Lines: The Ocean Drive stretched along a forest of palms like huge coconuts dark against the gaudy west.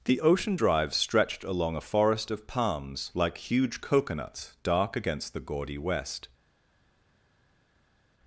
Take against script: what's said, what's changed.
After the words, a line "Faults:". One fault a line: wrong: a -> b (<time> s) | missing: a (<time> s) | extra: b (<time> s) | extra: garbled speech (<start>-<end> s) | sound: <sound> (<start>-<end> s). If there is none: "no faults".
The Ocean Drive stretched along a forest of palms like huge coconuts dark against the gaudy west.
Faults:
no faults